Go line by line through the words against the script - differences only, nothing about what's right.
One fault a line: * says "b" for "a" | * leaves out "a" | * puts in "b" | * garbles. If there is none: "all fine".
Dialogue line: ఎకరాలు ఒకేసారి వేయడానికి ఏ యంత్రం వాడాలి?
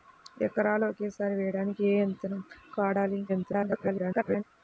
* garbles